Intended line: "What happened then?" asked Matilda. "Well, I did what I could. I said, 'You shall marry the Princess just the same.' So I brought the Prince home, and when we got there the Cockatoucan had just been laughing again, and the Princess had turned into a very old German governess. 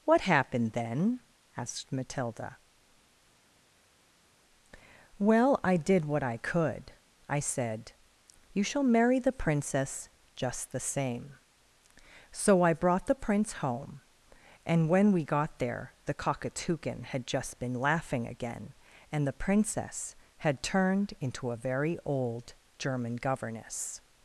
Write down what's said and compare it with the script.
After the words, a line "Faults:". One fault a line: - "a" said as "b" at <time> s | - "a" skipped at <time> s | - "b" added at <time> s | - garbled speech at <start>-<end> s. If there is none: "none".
"What happened then?" asked Matilda. "Well, I did what I could. I said, 'You shall marry the Princess just the same.' So I brought the Prince home, and when we got there the Cockatoucan had just been laughing again, and the Princess had turned into a very old German governess.
Faults:
none